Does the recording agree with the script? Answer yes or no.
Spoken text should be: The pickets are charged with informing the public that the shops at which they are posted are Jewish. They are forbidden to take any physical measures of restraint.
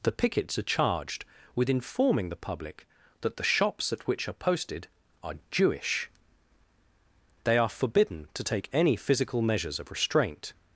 no